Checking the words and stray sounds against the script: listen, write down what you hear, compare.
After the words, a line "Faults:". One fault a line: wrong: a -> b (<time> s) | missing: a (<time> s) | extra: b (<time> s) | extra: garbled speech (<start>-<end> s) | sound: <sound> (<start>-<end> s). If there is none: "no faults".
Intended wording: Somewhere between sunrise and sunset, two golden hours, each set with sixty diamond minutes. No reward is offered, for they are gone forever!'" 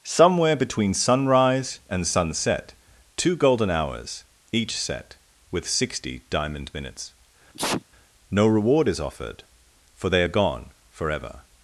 Somewhere between sunrise and sunset, two golden hours, each set with sixty diamond minutes. No reward is offered, for they are gone forever!'"
Faults:
sound: sneeze (7.5-7.8 s)